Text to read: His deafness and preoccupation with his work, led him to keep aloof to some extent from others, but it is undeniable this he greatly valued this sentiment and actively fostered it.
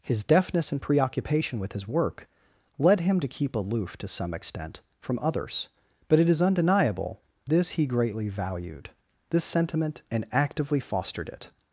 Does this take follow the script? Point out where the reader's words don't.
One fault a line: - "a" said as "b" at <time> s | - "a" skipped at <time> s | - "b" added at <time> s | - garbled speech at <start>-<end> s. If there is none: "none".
none